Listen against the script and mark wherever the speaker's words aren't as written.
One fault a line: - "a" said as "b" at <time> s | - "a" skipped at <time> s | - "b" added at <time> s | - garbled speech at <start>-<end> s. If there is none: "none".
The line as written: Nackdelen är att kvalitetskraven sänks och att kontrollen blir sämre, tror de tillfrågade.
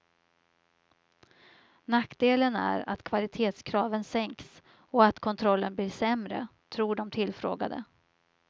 none